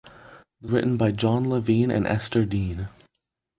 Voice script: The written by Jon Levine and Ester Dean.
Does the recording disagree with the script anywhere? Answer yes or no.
no